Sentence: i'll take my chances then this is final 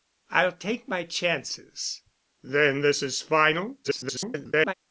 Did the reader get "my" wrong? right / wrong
right